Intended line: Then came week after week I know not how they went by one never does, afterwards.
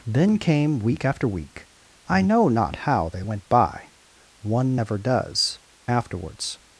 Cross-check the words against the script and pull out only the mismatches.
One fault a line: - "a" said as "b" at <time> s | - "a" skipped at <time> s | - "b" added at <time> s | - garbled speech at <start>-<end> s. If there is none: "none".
none